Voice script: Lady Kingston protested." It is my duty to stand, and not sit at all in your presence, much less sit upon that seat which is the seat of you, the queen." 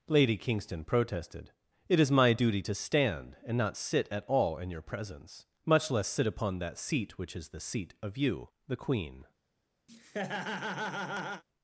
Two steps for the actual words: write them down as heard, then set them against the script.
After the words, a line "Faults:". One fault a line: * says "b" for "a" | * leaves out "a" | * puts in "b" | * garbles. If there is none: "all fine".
Lady Kingston protested." It is my duty to stand, and not sit at all in your presence, much less sit upon that seat which is the seat of you, the queen."
Faults:
all fine